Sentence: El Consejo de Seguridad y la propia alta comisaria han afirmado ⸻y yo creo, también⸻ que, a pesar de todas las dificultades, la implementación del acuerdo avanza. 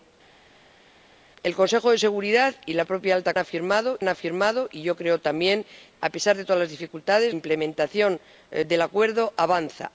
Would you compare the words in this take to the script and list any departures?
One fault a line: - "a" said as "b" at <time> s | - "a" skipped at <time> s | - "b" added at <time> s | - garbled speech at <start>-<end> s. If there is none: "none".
- "comisaria" said as "afirmado" at 3.4 s
- "que" skipped at 5.6 s
- "la" skipped at 7.3 s